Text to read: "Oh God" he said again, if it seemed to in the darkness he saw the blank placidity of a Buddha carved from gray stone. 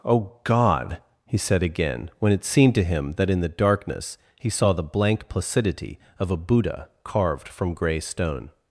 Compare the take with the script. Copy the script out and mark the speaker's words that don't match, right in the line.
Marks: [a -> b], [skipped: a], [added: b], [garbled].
"Oh God" he said again, [if -> when] it seemed to [added: him that] in the darkness he saw the blank placidity of a Buddha carved from gray stone.